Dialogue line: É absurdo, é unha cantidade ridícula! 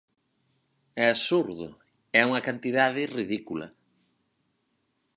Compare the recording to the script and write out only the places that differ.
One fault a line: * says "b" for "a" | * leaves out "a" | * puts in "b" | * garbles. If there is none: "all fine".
all fine